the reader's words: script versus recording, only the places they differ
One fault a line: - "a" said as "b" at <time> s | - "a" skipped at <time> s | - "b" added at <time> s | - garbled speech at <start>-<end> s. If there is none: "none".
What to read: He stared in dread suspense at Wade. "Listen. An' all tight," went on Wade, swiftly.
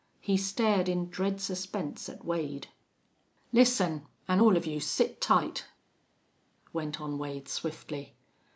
- "of you sit" added at 4.5 s